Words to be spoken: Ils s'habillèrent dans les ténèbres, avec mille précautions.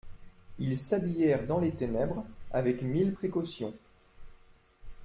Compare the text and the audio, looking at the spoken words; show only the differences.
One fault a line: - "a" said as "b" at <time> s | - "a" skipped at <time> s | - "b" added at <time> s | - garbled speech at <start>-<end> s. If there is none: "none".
none